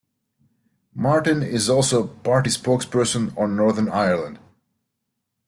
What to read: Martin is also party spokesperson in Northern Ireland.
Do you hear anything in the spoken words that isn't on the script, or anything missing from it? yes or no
yes